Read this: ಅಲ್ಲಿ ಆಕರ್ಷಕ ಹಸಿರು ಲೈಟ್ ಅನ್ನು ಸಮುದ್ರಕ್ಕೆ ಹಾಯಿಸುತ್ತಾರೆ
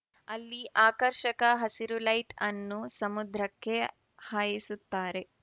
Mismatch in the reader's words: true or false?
false